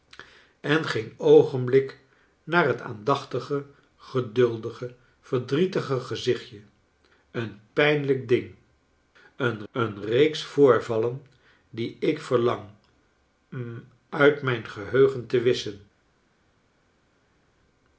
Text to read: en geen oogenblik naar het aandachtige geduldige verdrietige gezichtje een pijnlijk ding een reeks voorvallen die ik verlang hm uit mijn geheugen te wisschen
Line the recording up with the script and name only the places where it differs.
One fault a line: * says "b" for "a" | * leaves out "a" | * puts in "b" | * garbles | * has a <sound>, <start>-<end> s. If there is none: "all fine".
* puts in "een"